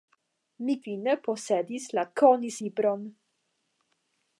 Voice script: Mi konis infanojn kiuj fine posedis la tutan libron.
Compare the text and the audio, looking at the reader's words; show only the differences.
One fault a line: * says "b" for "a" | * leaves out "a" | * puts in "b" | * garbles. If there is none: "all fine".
* leaves out "konis infanojn kiuj"
* says "konis" for "tutan"